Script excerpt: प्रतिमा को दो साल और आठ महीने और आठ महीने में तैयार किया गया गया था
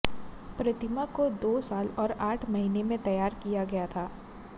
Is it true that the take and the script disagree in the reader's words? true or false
true